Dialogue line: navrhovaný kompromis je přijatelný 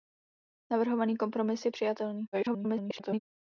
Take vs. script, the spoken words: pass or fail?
fail